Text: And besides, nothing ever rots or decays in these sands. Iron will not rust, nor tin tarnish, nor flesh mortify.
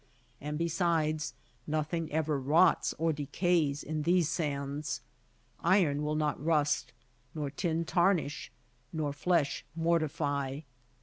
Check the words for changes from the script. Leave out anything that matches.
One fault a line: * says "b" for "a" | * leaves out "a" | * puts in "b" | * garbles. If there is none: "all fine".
all fine